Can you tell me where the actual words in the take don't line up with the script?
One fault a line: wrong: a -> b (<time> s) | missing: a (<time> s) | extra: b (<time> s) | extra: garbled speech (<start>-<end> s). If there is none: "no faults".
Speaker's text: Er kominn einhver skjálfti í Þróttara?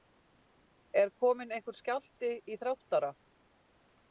no faults